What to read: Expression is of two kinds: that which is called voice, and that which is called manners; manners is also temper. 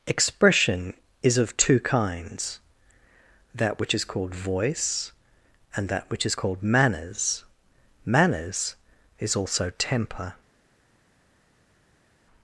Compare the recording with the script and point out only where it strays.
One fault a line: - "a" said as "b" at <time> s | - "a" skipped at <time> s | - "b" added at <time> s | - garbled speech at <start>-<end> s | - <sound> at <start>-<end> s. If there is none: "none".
none